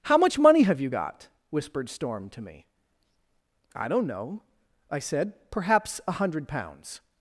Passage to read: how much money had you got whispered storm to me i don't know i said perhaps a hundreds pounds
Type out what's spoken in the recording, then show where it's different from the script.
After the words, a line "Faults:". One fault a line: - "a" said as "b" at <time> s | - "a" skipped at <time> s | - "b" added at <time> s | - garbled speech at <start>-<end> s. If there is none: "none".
how much money have you got whispered storm to me i don't know i said perhaps a hundred pounds
Faults:
- "had" said as "have" at 0.6 s
- "hundreds" said as "hundred" at 6.1 s